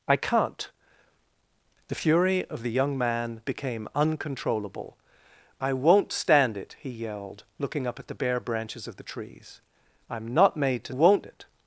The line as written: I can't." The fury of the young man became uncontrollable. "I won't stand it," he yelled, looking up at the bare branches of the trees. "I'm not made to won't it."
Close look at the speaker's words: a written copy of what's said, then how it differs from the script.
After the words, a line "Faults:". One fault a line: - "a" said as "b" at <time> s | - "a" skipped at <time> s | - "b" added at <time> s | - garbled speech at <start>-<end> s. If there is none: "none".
I can't." The fury of the young man became uncontrollable. "I won't stand it," he yelled, looking up at the bare branches of the trees. "I'm not made to won't it."
Faults:
none